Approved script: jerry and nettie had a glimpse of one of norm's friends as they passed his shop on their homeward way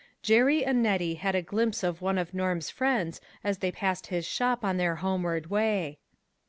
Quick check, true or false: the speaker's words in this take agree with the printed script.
true